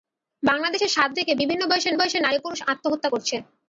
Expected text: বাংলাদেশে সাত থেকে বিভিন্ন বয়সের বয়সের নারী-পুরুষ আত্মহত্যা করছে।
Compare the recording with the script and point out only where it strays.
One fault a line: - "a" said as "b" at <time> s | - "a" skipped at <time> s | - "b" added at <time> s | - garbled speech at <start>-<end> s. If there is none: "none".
none